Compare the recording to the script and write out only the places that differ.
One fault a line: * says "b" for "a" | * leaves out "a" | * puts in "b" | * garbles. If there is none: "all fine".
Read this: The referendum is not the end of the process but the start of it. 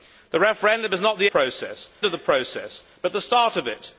* says "process" for "end"